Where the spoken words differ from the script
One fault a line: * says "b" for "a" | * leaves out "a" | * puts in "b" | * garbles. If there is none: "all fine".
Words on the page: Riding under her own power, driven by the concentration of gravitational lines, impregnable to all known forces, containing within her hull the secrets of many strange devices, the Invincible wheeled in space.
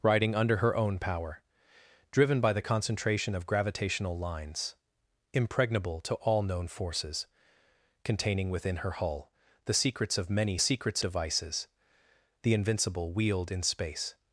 * says "secrets" for "strange"